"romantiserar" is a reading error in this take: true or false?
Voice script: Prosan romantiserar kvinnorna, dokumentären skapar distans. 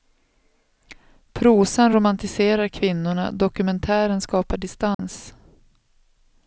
false